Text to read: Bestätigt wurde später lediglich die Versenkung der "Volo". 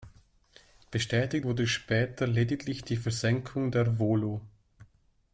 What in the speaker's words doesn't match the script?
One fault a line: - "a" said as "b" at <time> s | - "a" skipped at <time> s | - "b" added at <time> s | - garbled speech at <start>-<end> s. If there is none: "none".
none